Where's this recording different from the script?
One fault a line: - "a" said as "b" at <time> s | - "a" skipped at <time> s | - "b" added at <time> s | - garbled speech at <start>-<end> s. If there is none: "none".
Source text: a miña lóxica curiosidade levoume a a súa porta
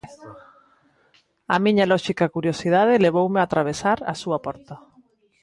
- "atravesar" added at 3.5 s